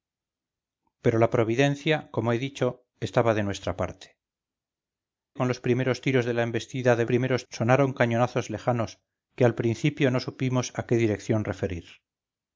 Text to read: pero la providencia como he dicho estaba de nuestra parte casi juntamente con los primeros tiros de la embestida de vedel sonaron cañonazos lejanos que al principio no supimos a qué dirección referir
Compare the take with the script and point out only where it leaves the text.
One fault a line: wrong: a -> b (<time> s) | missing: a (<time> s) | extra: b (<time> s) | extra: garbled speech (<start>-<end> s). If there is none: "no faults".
missing: casi juntamente (4.2 s)
wrong: vedel -> primeros (7.1 s)